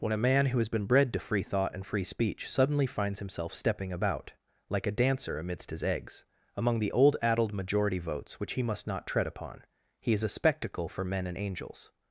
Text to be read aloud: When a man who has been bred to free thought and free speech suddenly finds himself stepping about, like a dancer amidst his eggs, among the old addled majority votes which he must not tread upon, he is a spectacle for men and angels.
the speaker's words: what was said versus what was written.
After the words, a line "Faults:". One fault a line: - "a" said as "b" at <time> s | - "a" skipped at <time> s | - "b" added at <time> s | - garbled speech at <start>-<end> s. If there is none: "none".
When a man who has been bred to free thought and free speech suddenly finds himself stepping about, like a dancer amidst his eggs, among the old addled majority votes which he must not tread upon, he is a spectacle for men and angels.
Faults:
none